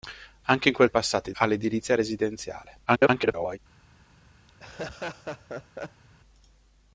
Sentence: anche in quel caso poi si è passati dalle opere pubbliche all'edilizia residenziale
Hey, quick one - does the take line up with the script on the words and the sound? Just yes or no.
no